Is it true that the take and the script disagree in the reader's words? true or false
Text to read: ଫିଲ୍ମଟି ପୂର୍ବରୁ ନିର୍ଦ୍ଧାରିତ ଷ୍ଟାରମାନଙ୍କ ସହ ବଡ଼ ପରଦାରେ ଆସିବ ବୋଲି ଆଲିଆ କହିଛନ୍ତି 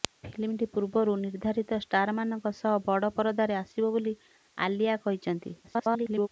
true